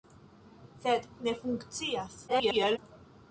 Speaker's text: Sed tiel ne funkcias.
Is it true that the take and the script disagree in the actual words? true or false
true